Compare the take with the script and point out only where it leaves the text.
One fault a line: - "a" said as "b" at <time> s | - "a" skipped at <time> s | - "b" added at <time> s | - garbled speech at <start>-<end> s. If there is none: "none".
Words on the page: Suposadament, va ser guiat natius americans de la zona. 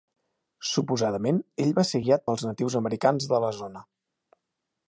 - "ell" added at 1.6 s
- "pels" added at 2.3 s